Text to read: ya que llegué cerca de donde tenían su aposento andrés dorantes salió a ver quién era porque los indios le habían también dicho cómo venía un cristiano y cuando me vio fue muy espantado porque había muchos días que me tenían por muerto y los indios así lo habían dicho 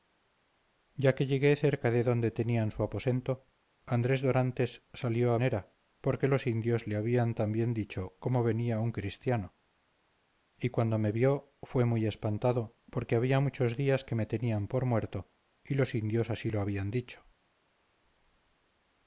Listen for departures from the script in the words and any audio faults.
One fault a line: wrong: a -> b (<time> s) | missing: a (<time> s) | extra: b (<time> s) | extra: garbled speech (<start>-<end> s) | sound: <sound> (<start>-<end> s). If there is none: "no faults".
missing: ver quién (5.4 s)